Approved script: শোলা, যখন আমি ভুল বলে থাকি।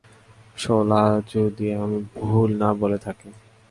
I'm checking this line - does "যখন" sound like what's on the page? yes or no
no